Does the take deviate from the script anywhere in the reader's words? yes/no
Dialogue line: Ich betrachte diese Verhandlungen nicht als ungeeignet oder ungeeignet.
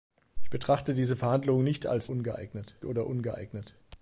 no